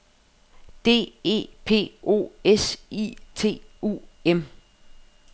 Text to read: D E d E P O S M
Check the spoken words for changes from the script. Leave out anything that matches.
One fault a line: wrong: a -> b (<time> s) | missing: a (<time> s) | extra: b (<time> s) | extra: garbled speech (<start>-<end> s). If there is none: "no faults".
missing: d E (1.5 s)
extra: I T U (2.9 s)